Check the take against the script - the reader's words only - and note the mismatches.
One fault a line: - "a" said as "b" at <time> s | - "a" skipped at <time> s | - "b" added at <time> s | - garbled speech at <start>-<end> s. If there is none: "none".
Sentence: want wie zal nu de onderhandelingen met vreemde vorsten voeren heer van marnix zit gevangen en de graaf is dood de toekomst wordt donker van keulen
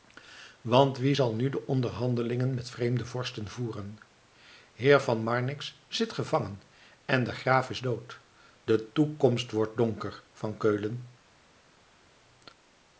none